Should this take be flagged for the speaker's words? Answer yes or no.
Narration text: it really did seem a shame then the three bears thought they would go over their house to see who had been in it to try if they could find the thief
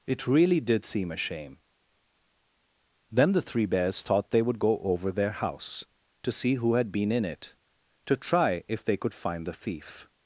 no